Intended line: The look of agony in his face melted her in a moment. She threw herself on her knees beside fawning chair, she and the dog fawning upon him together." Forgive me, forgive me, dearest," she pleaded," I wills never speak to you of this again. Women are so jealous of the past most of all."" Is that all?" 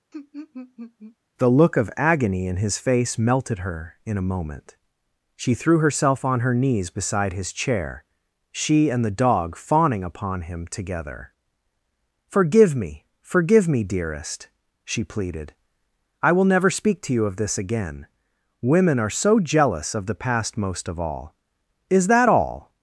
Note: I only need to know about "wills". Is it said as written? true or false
false